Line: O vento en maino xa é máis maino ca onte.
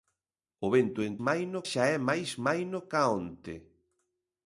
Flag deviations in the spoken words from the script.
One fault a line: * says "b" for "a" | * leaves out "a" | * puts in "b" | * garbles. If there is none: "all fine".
all fine